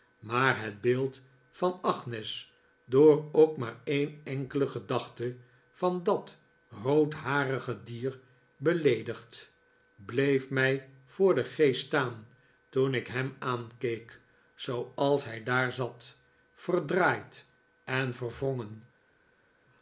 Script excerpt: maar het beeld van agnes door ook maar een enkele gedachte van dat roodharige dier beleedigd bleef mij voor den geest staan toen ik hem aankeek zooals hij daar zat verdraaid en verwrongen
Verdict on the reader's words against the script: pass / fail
pass